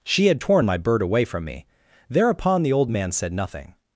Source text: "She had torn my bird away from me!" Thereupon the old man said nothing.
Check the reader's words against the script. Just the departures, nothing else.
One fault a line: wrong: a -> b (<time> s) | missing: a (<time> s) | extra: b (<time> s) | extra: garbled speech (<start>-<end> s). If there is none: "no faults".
no faults